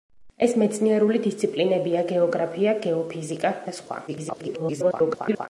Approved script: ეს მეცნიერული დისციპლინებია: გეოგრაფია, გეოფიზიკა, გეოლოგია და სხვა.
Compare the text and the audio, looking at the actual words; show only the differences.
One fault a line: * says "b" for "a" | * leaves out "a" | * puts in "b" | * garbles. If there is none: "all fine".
* leaves out "გეოლოგია"
* garbles